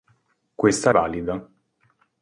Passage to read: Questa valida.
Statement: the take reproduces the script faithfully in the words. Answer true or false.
true